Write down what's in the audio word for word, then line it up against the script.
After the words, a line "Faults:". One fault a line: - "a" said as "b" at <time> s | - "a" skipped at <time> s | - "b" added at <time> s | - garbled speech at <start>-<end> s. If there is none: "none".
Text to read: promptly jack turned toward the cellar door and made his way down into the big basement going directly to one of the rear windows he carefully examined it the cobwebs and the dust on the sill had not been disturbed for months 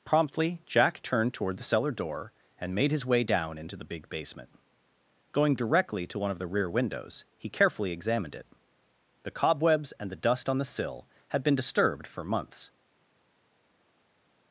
promptly jack turned toward the cellar door and made his way down into the big basement going directly to one of the rear windows he carefully examined it the cobwebs and the dust on the sill had been disturbed for months
Faults:
- "not" skipped at 11.4 s